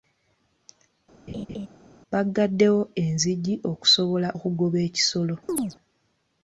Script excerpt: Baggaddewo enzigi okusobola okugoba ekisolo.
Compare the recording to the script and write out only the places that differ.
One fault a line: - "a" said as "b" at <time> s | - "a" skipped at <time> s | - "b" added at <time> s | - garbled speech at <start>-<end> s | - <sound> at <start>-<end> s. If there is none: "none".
- laugh at 1.3-1.7 s
- chirp at 5.5-5.8 s